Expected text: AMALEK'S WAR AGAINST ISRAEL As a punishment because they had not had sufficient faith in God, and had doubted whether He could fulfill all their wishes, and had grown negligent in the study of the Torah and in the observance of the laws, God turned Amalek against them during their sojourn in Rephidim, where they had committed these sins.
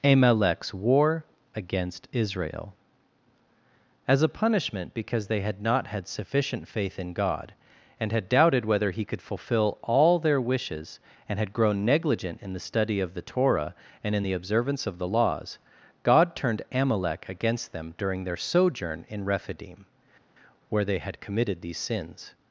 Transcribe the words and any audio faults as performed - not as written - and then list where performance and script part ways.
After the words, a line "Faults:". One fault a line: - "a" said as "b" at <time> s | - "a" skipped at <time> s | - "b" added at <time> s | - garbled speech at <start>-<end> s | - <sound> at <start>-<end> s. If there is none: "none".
AMALEK'S WAR AGAINST ISRAEL As a punishment because they had not had sufficient faith in God, and had doubted whether He could fulfill all their wishes, and had grown negligent in the study of the Torah and in the observance of the laws, God turned Amalek against them during their sojourn in Rephidim, where they had committed these sins.
Faults:
none